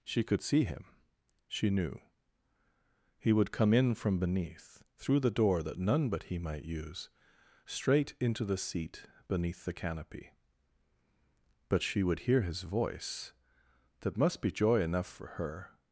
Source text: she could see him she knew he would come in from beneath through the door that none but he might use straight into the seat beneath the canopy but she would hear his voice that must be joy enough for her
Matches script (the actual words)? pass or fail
pass